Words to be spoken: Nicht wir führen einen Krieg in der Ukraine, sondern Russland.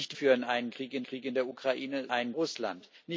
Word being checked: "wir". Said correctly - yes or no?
no